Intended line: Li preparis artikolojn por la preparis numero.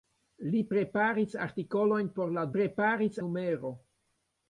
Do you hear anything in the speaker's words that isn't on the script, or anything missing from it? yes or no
no